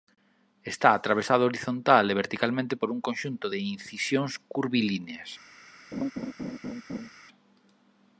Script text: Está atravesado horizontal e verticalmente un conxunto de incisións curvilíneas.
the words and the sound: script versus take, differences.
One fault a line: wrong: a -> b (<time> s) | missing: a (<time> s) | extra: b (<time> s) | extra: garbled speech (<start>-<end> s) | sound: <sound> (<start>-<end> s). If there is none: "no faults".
extra: por (2.8 s)
sound: laugh (5.9-7.1 s)